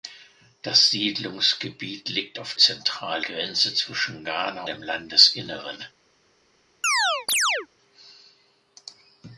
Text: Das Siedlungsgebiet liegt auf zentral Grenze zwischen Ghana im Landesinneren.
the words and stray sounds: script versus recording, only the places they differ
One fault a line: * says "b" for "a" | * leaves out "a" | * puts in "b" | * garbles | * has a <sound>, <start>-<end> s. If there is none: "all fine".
* has a chirp, 6.8-7.7 s